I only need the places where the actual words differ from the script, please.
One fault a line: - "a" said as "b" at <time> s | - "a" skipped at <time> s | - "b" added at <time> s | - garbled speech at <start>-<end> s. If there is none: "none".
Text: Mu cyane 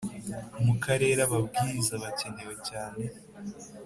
- "karere ababwiriza bakenewe" added at 0.8 s